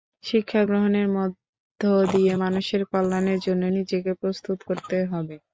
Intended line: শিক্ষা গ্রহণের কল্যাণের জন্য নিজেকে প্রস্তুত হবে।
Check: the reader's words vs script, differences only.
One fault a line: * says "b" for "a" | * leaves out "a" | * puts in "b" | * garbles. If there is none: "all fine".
* puts in "মধ্য দিয়ে মানুষের"
* puts in "করতে"